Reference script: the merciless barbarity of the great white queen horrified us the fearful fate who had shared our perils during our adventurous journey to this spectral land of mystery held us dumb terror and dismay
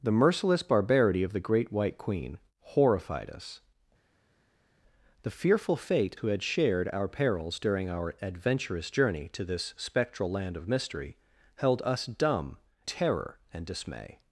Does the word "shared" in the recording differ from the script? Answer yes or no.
no